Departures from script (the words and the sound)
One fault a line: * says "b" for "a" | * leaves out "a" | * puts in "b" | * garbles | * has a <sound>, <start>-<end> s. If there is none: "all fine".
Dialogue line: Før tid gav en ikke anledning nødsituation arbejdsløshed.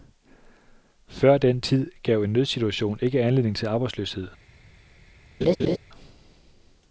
* puts in "den"
* puts in "nødsituation"
* says "til" for "nødsituation"
* has a laugh, 5.4-5.8 s